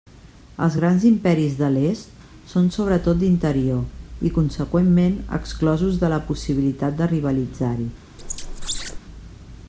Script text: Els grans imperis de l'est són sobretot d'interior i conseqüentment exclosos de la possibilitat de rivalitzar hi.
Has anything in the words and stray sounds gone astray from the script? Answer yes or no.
yes